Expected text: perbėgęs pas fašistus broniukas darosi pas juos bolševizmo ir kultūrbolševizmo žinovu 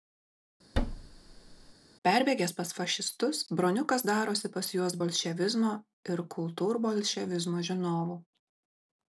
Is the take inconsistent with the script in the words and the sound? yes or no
yes